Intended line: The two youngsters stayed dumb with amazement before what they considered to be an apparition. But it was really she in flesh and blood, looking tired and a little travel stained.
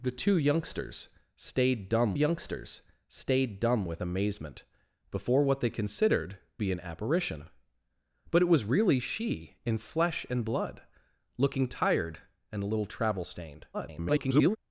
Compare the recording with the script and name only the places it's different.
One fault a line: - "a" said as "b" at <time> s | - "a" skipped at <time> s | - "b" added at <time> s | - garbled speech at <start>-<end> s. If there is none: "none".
- "youngsters stayed dumb" added at 2.1 s
- "to" skipped at 6.4 s
- garbled speech at 13.7-14.6 s